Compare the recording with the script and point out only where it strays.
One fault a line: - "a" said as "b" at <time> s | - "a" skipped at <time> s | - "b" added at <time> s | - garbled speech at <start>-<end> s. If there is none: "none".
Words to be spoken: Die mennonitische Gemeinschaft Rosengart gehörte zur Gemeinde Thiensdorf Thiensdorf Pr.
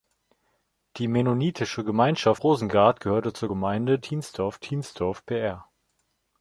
none